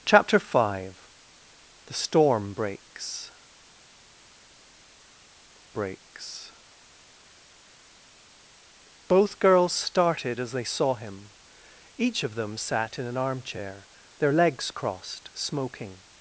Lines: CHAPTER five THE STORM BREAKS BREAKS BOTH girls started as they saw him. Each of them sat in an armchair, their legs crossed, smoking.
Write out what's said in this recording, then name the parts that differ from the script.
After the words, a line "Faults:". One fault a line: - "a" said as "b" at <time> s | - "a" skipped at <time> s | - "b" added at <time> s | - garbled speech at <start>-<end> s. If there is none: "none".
CHAPTER five THE STORM BREAKS BREAKS BOTH girls started as they saw him. Each of them sat in an armchair, their legs crossed, smoking.
Faults:
none